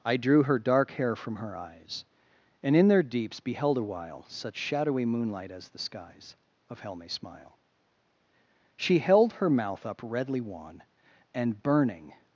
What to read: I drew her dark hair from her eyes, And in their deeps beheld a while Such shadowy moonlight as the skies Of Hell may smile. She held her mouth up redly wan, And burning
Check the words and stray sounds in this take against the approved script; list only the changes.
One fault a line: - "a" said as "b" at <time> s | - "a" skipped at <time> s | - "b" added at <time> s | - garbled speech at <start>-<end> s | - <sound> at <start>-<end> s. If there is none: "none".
none